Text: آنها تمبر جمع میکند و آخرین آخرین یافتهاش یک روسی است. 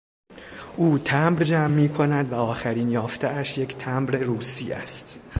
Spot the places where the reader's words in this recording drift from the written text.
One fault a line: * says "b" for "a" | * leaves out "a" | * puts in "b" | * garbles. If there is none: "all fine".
* says "او" for "آنها"
* leaves out "آخرین"
* puts in "تمبر"